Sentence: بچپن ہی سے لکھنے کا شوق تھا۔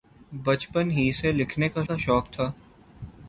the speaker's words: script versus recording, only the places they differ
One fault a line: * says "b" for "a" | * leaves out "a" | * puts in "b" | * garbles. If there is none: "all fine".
* puts in "کا"